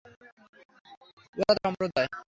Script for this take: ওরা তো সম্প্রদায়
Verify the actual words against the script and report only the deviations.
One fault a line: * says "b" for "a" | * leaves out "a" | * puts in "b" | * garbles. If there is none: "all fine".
all fine